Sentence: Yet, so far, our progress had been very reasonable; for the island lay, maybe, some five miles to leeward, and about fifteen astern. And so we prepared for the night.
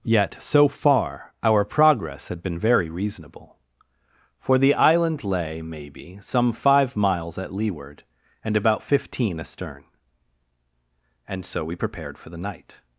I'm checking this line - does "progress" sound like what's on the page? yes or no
yes